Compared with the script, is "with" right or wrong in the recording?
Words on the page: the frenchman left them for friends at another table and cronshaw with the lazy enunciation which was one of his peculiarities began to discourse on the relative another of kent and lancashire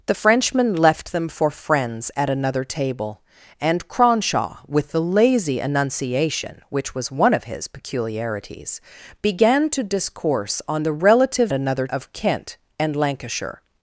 right